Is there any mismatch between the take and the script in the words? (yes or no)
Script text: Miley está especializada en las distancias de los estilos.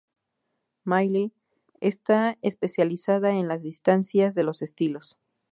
no